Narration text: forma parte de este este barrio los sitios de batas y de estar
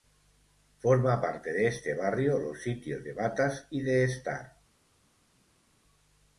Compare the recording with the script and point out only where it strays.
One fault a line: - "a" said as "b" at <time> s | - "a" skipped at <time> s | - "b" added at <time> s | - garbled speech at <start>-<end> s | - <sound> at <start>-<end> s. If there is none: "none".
- "este" skipped at 1.9 s